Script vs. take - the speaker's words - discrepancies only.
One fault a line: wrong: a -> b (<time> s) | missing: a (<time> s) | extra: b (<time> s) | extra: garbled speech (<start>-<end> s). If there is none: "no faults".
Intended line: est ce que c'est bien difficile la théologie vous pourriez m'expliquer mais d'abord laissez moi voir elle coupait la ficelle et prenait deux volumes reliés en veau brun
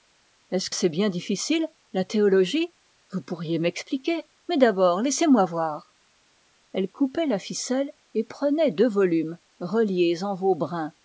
missing: que (0.7 s)